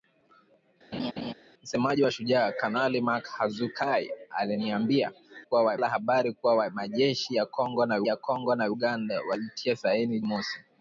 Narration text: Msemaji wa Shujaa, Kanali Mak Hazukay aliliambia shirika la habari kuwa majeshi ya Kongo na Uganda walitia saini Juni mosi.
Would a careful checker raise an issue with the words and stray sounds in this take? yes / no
yes